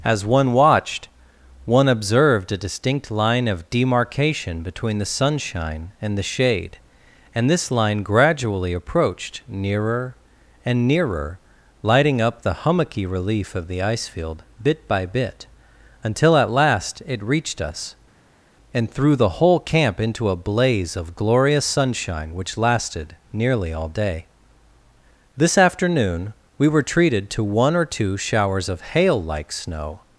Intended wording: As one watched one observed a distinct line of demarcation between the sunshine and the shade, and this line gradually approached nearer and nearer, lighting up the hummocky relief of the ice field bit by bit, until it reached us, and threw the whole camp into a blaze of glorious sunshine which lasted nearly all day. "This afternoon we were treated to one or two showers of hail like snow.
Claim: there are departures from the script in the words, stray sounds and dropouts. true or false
true